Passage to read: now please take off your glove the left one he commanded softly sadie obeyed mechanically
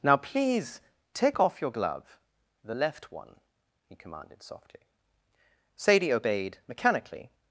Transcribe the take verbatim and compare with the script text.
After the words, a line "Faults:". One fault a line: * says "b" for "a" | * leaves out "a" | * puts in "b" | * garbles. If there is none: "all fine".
now please take off your glove the left one he commanded softly sadie obeyed mechanically
Faults:
all fine